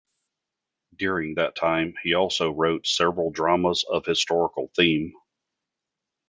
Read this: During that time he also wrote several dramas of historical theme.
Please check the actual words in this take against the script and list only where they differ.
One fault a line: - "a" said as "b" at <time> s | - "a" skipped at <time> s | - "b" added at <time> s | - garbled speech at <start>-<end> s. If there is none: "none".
none